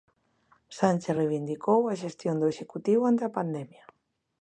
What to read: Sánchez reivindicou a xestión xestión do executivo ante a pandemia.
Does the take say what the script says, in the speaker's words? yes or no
no